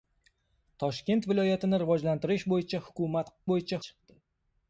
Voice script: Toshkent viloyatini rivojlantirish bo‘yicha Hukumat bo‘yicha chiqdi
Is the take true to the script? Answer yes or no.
yes